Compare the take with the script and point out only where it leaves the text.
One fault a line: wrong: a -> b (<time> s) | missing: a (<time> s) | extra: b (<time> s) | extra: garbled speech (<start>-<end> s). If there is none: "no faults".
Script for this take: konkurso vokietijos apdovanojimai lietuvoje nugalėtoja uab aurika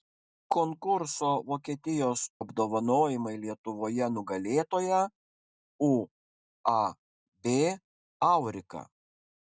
no faults